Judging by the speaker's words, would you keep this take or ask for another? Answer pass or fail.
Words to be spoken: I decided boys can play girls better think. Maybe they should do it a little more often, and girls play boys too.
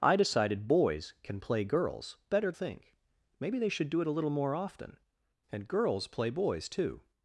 pass